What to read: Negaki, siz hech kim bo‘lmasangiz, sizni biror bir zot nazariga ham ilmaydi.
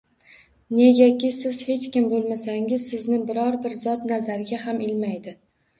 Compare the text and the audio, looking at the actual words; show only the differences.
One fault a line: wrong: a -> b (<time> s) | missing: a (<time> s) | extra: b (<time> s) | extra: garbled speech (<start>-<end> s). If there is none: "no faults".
no faults